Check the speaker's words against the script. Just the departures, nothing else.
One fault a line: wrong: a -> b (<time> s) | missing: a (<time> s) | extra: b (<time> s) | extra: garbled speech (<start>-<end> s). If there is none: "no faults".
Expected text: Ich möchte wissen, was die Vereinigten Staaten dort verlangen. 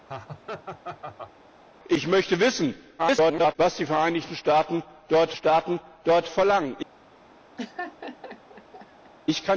extra: garbled speech (3.0-3.6 s)
extra: Staaten dort (5.3 s)